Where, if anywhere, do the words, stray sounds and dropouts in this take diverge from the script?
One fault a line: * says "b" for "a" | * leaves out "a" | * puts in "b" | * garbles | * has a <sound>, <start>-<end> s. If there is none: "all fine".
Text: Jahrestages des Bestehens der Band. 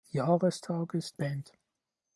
* leaves out "des Bestehens der"